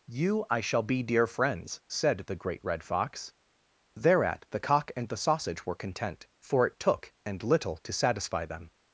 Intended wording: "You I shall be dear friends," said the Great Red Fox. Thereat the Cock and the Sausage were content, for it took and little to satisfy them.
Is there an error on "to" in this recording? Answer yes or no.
no